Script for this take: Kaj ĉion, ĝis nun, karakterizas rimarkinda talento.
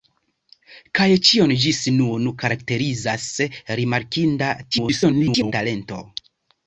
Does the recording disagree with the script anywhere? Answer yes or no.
yes